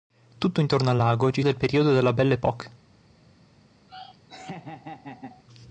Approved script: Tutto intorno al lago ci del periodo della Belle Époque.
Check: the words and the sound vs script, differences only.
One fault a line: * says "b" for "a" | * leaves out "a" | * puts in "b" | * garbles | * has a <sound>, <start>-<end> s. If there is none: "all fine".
* has a laugh, 3.9-5.4 s